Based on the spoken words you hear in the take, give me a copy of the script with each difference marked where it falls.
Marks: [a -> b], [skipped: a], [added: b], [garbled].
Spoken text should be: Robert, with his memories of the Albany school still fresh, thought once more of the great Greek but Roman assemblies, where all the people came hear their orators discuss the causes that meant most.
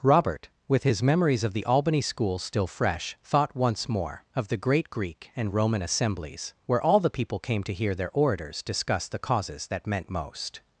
Robert, with his memories of the Albany school still fresh, thought once more of the great Greek [but -> and] Roman assemblies, where all the people came [added: to] hear their orators discuss the causes that meant most.